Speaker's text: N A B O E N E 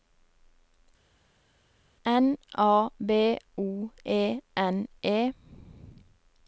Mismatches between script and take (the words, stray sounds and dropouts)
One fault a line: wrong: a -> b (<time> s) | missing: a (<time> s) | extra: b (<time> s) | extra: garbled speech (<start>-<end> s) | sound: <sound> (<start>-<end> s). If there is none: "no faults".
no faults